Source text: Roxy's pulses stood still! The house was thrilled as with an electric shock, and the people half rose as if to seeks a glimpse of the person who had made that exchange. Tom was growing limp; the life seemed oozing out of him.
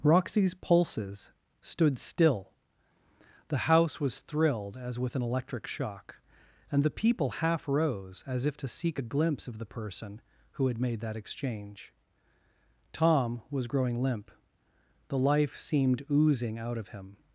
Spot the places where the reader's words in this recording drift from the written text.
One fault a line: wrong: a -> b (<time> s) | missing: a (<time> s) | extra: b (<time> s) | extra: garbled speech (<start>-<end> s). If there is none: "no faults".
wrong: seeks -> seek (8.7 s)